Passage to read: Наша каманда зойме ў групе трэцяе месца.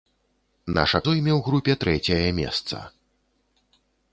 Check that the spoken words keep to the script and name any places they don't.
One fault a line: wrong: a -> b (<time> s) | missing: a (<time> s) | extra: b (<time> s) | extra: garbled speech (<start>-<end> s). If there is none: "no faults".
missing: каманда (1.0 s)